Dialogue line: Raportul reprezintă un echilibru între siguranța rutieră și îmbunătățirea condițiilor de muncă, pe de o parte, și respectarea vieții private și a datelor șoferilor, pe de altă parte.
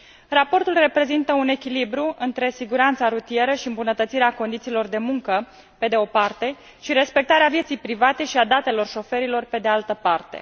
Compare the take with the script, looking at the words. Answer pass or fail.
pass